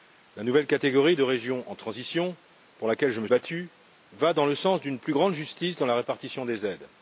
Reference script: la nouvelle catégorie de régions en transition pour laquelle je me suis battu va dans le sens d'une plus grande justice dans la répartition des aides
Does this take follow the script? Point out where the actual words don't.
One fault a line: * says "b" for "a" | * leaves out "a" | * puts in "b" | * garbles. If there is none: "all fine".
* leaves out "suis"